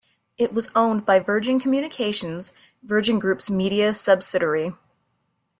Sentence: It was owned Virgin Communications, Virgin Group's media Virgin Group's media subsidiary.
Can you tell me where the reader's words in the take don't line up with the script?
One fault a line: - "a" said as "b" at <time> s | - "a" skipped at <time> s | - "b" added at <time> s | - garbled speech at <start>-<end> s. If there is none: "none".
- "by" added at 1.1 s
- "Virgin Group's media" skipped at 3.9 s